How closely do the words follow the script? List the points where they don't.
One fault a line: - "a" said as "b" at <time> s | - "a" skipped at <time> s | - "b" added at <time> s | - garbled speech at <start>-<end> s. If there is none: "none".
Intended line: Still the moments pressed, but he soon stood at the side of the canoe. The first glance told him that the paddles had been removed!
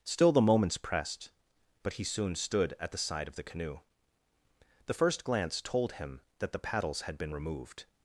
none